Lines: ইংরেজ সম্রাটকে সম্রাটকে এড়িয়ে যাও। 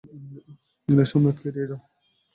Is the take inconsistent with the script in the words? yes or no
yes